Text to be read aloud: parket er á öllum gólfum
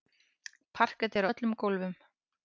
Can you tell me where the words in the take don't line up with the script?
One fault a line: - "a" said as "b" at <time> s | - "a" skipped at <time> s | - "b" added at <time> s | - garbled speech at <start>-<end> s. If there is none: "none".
none